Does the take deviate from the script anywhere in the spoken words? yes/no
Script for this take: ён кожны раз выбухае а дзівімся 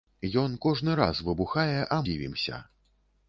no